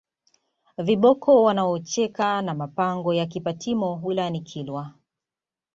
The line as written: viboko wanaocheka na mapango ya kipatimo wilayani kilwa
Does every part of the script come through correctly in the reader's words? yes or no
yes